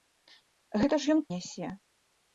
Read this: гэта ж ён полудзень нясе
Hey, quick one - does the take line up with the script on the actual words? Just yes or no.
no